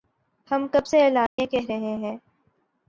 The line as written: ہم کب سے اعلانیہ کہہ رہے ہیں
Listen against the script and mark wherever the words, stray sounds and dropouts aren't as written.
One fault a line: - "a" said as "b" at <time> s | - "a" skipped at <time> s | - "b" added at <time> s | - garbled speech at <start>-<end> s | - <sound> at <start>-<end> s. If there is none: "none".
- dropout at 1.3-1.4 s